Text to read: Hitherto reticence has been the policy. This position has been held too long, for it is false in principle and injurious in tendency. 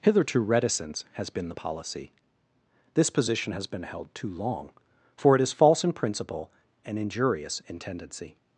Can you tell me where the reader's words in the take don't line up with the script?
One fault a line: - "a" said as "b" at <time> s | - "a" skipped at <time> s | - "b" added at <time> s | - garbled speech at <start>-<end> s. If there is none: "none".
none